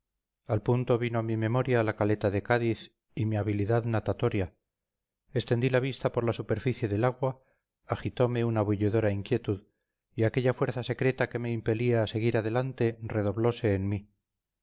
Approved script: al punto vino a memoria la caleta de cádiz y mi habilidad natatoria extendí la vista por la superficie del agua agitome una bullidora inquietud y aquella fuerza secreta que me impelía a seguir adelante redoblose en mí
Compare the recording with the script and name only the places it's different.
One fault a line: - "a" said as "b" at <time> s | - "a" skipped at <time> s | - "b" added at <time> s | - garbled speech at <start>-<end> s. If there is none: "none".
- "mi" added at 1.2 s